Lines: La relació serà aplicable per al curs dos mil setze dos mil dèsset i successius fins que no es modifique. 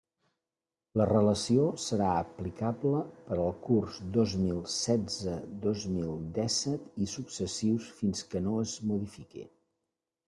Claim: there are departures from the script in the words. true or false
false